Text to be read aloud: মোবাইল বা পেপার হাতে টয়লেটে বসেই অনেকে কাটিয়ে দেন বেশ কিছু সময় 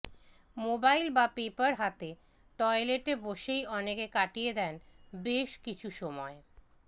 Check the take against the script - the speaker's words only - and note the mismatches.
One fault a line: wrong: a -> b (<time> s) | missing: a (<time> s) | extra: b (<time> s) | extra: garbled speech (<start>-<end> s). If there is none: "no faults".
no faults